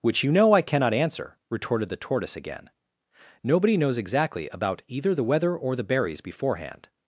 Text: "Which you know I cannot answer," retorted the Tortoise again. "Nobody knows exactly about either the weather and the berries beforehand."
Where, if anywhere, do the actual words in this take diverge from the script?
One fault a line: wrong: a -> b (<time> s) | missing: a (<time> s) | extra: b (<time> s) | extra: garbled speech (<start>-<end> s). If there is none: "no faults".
wrong: and -> or (5.6 s)